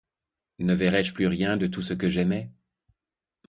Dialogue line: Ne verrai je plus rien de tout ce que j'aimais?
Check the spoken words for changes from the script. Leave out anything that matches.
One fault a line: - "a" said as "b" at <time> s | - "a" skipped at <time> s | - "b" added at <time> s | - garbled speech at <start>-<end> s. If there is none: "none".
none